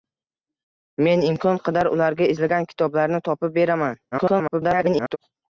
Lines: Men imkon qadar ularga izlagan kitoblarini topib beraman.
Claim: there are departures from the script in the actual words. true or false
true